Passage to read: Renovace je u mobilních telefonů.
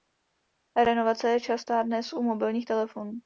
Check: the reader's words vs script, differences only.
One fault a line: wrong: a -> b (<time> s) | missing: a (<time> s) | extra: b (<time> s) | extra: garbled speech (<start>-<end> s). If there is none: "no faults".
extra: častá dnes (1.4 s)